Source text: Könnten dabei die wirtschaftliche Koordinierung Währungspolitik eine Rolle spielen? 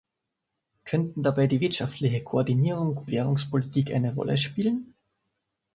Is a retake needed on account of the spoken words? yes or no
no